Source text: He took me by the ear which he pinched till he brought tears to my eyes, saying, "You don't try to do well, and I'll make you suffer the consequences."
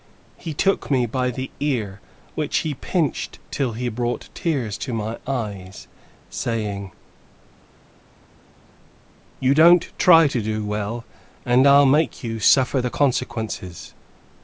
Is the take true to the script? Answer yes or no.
yes